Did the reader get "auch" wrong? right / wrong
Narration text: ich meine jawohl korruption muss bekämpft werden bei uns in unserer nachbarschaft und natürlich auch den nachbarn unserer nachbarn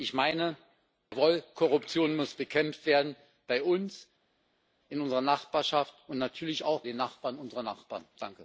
right